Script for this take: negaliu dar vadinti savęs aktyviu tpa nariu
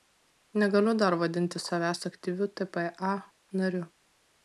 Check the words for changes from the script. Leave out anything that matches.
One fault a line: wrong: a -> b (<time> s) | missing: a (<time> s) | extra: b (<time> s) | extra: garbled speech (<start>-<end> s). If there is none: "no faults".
no faults